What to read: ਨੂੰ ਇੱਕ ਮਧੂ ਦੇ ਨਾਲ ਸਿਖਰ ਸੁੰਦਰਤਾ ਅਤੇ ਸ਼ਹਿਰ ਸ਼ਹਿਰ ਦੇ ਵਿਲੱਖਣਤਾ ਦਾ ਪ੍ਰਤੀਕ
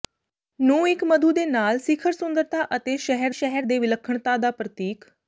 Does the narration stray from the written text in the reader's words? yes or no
no